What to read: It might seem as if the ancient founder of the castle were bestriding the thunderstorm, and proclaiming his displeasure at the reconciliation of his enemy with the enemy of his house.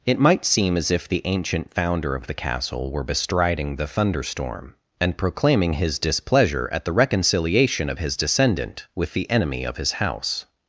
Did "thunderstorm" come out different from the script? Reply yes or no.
no